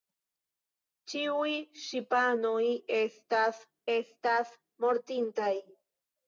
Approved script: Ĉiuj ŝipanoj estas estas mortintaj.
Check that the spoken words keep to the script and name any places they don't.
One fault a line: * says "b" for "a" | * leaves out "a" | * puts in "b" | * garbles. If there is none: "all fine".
all fine